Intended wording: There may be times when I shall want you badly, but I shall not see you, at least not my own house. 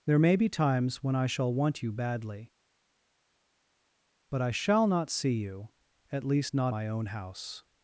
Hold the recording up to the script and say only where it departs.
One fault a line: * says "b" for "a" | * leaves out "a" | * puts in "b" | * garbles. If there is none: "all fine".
all fine